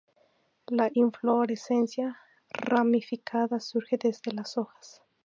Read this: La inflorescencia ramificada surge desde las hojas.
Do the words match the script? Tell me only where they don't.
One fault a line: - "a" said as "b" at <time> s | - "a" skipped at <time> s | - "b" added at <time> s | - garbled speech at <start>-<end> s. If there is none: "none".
none